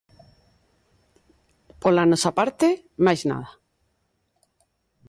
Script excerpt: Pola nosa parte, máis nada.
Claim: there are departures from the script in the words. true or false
false